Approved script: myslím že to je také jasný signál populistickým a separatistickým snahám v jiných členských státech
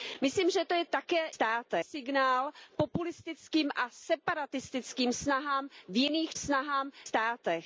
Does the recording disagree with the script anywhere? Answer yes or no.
yes